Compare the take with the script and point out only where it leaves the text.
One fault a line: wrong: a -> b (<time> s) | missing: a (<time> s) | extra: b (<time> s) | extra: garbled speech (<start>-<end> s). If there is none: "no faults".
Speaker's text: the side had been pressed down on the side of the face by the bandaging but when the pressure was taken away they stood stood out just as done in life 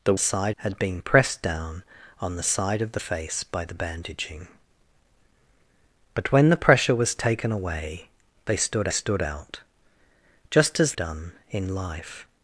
no faults